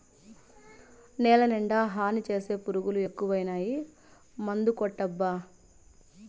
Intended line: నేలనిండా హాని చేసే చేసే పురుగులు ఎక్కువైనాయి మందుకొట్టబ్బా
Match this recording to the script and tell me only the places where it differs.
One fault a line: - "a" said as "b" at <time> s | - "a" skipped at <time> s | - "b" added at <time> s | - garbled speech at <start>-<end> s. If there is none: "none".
- "చేసే" skipped at 2.5 s